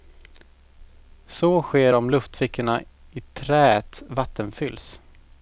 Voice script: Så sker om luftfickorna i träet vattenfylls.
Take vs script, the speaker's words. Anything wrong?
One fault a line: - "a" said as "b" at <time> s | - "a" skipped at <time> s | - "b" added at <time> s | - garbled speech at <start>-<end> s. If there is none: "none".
none